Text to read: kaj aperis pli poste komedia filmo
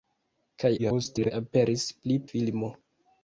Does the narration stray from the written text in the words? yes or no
yes